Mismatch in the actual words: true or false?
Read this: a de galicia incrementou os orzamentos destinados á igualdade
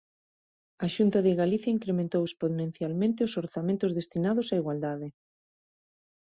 true